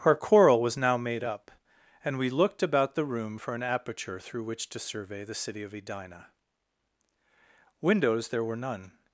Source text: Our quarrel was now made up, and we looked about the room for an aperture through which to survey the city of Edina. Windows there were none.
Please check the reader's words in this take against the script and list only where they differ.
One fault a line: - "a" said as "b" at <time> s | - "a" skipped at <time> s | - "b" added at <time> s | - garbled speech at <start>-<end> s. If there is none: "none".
none